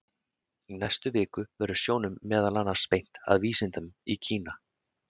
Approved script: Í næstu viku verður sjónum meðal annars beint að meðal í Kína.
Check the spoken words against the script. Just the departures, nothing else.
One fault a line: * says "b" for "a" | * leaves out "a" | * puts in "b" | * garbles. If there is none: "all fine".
* says "vísindum" for "meðal"